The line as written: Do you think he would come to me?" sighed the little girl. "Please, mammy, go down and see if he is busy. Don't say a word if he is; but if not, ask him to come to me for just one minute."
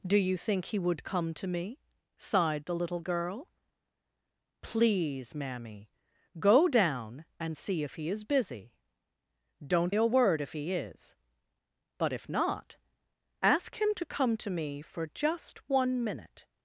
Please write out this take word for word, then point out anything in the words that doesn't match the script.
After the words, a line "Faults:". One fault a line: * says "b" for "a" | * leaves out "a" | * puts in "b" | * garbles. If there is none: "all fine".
Do you think he would come to me?" sighed the little girl. "Please, mammy, go down and see if he is busy. Don't a word if he is; but if not, ask him to come to me for just one minute."
Faults:
* leaves out "say"